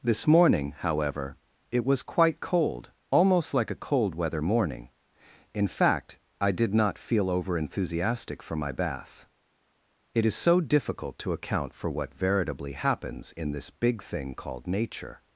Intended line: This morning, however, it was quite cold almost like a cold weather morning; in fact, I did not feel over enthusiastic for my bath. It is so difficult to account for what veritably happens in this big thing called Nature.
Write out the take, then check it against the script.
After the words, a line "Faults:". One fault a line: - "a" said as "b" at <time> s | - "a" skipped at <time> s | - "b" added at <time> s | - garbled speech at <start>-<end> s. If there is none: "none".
This morning, however, it was quite cold almost like a cold weather morning; in fact, I did not feel over enthusiastic for my bath. It is so difficult to account for what veritably happens in this big thing called Nature.
Faults:
none